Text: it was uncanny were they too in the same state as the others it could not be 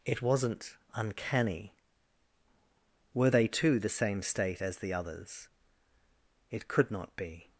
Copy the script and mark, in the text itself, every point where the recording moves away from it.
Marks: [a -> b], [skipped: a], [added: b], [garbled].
it [was -> wasn't] uncanny were they too [skipped: in] the same state as the others it could not be